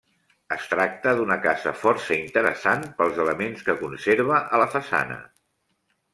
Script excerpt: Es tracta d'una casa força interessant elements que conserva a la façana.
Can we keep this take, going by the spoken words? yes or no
no